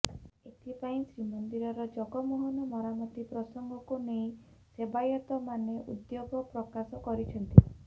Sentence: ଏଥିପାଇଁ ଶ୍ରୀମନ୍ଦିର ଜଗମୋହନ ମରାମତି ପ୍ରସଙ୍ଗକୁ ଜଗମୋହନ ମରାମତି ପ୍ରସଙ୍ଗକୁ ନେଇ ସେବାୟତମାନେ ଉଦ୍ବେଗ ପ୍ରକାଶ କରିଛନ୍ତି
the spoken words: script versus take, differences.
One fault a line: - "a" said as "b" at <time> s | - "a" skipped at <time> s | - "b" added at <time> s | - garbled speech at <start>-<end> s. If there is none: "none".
- "ଜଗମୋହନ ମରାମତି ପ୍ରସଙ୍ଗକୁ" skipped at 4.0 s